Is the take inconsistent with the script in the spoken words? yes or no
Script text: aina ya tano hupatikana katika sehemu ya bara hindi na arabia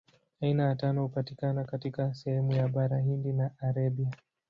no